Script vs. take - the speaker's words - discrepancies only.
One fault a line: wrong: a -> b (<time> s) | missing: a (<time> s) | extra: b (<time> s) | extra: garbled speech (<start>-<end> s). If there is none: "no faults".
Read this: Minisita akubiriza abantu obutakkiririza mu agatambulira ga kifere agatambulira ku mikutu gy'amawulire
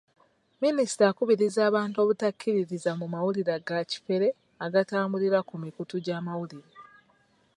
wrong: agatambulira -> mawulire (3.1 s)